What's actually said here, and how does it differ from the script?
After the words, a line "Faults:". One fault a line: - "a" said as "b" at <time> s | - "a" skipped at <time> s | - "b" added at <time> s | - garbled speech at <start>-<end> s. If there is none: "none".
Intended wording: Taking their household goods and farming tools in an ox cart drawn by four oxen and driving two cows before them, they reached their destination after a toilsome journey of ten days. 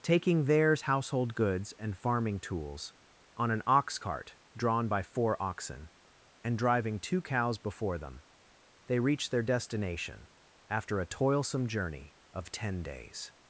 Taking theirs household goods and farming tools on an ox cart drawn by four oxen and driving two cows before them, they reached their destination after a toilsome journey of ten days.
Faults:
- "their" said as "theirs" at 0.5 s
- "in" said as "on" at 3.4 s